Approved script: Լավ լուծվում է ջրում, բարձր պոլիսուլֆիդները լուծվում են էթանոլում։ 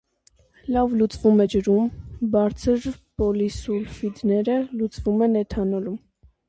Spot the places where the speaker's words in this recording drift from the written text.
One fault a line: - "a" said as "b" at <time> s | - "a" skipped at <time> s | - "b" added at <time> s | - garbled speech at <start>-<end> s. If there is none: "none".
none